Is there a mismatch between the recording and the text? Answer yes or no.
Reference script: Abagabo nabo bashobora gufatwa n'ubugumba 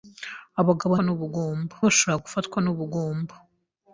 yes